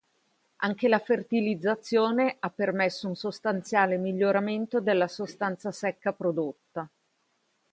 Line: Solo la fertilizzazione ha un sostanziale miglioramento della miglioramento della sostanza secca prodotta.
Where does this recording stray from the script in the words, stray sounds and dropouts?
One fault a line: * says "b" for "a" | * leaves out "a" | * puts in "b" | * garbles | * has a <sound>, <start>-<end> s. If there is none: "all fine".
* says "Anche" for "Solo"
* puts in "permesso"
* leaves out "miglioramento della"